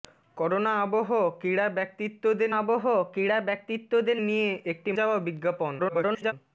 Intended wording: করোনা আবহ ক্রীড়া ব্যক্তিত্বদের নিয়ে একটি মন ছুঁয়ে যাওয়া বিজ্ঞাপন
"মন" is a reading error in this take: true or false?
true